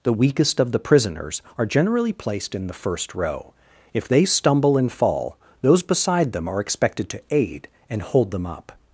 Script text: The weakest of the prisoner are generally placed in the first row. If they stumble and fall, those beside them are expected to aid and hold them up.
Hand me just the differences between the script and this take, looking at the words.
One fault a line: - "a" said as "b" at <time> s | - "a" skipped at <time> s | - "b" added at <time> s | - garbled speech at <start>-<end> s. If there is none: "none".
- "prisoner" said as "prisoners" at 0.8 s